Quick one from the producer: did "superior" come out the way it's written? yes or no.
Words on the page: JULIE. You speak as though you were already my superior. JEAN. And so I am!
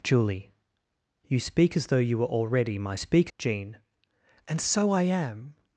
no